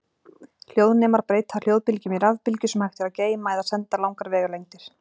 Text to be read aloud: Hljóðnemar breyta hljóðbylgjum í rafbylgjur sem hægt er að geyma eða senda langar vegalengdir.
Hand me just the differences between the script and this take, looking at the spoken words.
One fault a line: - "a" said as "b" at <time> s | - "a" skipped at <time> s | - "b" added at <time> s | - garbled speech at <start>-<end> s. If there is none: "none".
none